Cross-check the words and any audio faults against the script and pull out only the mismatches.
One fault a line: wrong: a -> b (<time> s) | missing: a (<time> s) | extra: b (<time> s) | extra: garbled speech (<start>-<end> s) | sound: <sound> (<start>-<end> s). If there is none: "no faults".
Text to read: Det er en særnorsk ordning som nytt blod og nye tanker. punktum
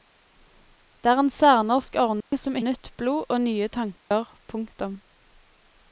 sound: dropout (2.2-2.3 s)
sound: dropout (4.0-4.1 s)